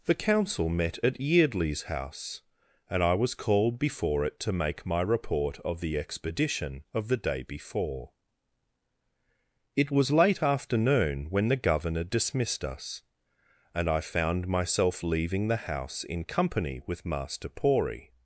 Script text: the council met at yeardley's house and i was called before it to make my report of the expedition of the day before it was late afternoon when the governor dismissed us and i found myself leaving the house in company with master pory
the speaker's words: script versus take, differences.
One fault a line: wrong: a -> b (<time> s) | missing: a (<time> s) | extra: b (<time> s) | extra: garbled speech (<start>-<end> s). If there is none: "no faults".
no faults